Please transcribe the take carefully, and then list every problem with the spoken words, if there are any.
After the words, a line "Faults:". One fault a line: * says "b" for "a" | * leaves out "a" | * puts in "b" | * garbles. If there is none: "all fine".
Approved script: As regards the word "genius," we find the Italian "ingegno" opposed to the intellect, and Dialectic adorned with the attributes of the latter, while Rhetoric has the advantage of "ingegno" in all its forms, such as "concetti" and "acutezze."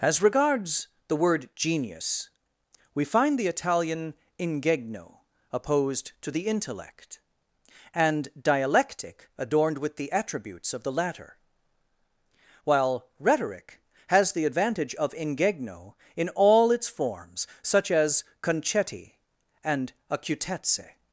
As regards the word "genius," we find the Italian "ingegno" opposed to the intellect, and Dialectic adorned with the attributes of the latter, while Rhetoric has the advantage of "ingegno" in all its forms, such as "concetti" and "acutezze."
Faults:
all fine